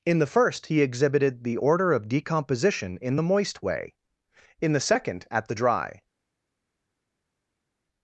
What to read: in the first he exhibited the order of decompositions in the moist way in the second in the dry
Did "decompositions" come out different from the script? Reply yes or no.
yes